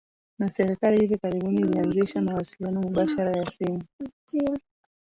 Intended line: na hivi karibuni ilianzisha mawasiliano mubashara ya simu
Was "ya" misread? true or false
false